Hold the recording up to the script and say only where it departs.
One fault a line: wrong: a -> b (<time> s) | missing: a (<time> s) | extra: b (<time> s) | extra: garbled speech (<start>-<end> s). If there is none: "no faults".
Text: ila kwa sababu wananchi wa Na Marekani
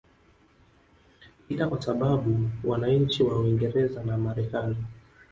extra: Uingereza (3.4 s)